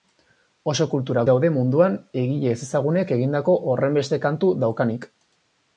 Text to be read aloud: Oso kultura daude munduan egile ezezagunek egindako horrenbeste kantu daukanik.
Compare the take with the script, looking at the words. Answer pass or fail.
pass